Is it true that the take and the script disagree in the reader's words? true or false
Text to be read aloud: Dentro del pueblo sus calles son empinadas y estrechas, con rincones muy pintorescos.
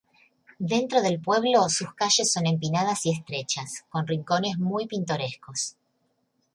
false